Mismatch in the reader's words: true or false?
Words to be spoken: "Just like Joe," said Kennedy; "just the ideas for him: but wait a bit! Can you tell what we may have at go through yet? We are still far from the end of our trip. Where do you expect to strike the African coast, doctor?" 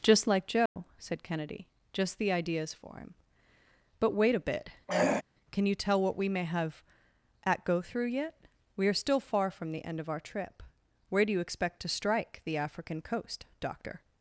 false